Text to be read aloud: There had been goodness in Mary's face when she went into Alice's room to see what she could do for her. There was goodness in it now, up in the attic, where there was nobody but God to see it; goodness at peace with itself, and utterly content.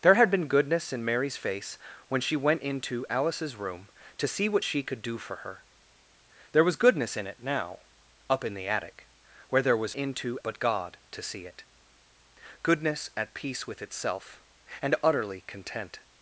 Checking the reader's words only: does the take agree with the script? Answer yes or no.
no